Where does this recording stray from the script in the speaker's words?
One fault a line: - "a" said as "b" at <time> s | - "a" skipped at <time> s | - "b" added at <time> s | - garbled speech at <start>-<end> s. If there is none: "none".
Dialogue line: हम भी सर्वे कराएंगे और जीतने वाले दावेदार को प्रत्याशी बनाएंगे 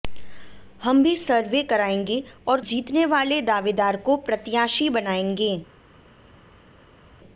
none